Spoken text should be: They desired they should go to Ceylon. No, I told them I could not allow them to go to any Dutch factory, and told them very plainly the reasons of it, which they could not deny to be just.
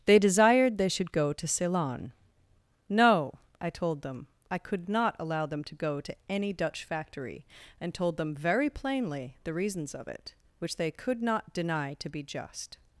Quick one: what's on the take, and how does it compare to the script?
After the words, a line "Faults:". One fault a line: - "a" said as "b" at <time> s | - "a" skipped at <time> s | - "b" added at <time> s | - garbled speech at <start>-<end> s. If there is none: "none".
They desired they should go to Ceylon. No, I told them I could not allow them to go to any Dutch factory, and told them very plainly the reasons of it, which they could not deny to be just.
Faults:
none